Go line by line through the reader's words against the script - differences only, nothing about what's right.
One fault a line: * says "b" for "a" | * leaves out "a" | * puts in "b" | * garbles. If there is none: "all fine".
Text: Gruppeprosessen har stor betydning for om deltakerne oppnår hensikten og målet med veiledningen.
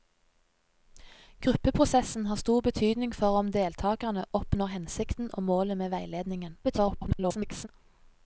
* garbles